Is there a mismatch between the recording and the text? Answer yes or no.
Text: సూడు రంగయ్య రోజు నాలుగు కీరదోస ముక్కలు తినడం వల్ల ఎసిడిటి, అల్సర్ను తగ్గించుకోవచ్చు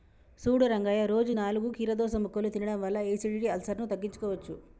no